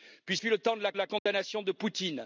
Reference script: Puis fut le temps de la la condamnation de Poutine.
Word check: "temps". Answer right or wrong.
right